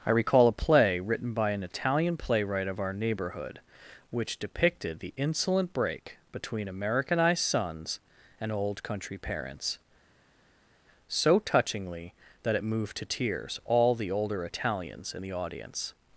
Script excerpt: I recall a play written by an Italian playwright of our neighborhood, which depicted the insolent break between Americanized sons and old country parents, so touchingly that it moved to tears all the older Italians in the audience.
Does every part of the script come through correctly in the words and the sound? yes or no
yes